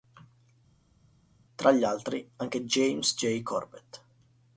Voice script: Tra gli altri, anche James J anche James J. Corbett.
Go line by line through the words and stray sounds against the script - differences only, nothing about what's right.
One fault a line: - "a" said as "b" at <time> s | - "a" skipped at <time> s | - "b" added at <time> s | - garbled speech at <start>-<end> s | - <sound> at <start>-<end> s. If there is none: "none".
- "anche James J" skipped at 3.4 s